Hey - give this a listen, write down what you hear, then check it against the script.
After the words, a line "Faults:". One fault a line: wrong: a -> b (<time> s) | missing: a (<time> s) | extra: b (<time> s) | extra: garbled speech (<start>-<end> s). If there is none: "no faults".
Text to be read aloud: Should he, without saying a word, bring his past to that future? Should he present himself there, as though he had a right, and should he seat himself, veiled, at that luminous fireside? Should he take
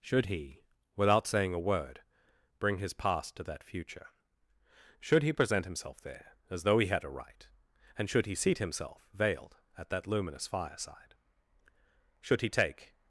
Should he, without saying a word, bring his past to that future? Should he present himself there, as though he had a right, and should he seat himself, veiled, at that luminous fireside? Should he take
Faults:
no faults